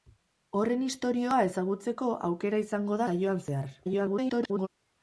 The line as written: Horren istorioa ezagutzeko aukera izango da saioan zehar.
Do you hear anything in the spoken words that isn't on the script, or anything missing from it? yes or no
yes